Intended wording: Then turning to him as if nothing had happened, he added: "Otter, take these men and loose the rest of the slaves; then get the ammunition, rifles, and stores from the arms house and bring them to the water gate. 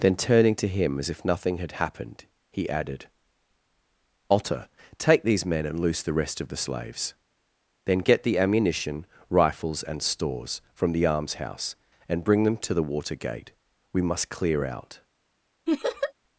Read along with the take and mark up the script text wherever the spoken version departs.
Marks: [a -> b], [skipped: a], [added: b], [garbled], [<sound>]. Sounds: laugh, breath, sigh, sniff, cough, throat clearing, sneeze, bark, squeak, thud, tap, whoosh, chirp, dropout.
Then turning to him as if nothing had happened, he added: "Otter, take these men and loose the rest of the slaves; then get the ammunition, rifles, and stores from the arms house and bring them to the water gate. [added: We must clear out] [laugh]